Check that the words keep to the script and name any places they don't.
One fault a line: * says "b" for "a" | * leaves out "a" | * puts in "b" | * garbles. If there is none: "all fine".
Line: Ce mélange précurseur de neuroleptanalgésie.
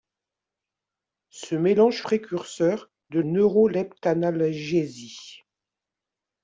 all fine